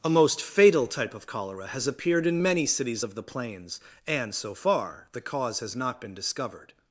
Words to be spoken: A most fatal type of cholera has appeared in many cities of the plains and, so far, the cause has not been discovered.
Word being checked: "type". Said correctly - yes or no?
yes